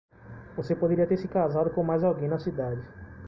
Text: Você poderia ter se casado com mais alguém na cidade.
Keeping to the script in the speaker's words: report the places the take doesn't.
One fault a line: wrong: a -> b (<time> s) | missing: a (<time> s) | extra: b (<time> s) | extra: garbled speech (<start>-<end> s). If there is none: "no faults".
no faults